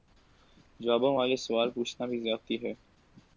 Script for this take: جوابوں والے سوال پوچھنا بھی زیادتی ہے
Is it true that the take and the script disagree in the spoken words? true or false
false